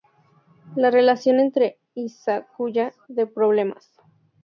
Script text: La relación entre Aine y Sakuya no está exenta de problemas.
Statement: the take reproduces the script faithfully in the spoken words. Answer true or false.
false